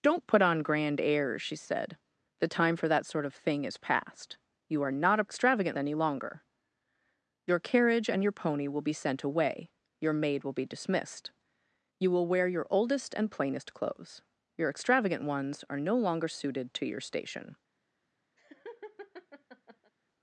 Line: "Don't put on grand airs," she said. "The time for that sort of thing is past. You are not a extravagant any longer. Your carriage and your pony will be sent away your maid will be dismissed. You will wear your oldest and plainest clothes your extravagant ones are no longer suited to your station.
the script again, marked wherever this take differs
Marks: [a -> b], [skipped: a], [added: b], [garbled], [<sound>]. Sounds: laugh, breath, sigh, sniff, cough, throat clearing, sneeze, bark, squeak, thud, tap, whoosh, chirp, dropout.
"Don't put on grand airs," she said. "The time for that sort of thing is past. You are not a extravagant any longer. Your carriage and your pony will be sent away your maid will be dismissed. You will wear your oldest and plainest clothes your extravagant ones are no longer suited to your station. [laugh]